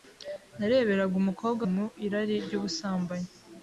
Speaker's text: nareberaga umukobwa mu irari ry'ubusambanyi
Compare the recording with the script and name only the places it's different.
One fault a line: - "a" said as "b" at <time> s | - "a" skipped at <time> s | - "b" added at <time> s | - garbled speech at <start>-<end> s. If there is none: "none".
none